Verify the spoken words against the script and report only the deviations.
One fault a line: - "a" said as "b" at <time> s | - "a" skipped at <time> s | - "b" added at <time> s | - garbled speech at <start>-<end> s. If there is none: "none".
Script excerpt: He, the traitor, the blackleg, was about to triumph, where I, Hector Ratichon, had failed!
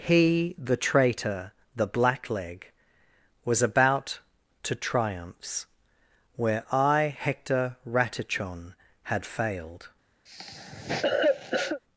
- "triumph" said as "triumphs" at 4.7 s